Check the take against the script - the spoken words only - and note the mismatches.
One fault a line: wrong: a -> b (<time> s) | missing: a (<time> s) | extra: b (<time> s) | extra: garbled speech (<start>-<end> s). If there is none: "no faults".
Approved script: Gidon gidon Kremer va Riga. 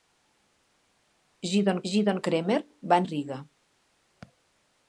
no faults